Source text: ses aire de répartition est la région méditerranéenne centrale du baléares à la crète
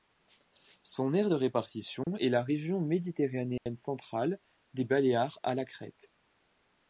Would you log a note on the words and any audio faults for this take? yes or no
yes